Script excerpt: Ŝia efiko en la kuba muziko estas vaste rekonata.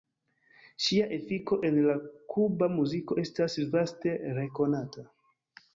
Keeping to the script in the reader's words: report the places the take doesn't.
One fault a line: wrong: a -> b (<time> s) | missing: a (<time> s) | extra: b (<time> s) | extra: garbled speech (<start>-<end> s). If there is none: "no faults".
no faults